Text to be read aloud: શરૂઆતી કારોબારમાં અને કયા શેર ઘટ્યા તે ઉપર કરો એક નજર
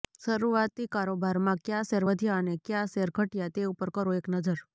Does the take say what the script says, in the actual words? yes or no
no